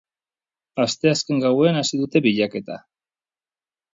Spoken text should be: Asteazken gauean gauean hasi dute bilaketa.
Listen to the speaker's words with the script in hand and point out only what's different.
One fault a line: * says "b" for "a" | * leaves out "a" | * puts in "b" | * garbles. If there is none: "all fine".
* leaves out "gauean"